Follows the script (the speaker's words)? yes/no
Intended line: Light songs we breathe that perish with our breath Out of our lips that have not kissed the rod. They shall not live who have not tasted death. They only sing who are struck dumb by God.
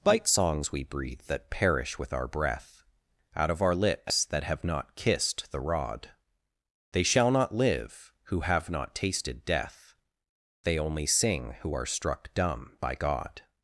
no